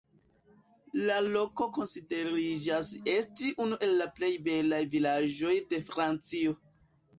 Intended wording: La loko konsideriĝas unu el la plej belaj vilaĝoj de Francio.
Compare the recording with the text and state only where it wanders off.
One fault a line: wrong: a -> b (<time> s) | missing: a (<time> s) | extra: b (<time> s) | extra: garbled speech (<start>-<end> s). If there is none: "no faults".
extra: esti (3.2 s)